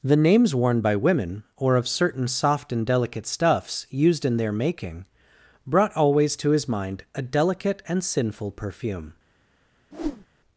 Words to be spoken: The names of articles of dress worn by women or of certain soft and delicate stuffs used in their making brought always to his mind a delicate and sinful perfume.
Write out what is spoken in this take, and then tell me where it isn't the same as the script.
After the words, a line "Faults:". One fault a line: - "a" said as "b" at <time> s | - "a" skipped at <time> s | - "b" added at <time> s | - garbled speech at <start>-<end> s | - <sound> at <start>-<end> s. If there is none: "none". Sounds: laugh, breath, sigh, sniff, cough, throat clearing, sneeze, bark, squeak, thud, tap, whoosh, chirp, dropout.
The names worn by women or of certain soft and delicate stuffs used in their making brought always to his mind a delicate and sinful perfume.
Faults:
- "of articles of dress" skipped at 0.6 s
- whoosh at 9.9-10.3 s